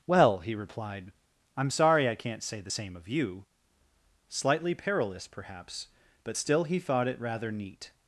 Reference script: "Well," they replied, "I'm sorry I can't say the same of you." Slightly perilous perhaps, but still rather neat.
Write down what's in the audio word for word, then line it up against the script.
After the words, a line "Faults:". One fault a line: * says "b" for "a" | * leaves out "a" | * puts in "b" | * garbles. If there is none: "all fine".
"Well," he replied, "I'm sorry I can't say the same of you." Slightly perilous perhaps, but still he thought it rather neat.
Faults:
* says "he" for "they"
* puts in "he thought it"